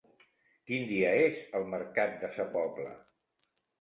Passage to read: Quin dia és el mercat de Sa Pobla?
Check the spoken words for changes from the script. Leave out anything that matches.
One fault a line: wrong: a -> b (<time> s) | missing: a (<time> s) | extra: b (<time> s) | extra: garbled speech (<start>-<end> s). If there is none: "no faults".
no faults